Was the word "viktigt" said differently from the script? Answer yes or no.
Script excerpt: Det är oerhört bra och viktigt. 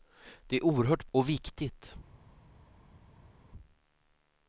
no